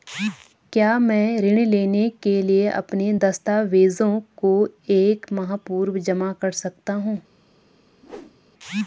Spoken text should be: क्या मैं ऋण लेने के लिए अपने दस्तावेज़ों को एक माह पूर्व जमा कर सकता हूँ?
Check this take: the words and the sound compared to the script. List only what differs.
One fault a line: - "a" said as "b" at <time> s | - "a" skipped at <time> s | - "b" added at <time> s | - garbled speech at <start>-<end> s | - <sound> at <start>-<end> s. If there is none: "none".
- whoosh at 8.0-8.4 s